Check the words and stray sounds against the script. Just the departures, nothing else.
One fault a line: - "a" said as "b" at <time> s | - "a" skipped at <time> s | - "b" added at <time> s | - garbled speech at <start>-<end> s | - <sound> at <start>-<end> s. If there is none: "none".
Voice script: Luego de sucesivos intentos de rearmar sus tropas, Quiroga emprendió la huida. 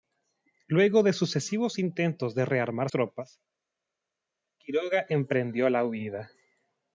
- "sus" skipped at 2.9 s